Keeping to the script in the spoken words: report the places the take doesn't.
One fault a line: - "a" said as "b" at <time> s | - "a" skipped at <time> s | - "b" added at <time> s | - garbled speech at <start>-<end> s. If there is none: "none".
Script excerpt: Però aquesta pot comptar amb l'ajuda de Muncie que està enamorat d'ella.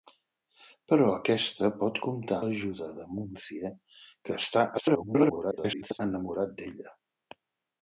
- "amb" skipped at 2.4 s
- garbled speech at 4.7-6.0 s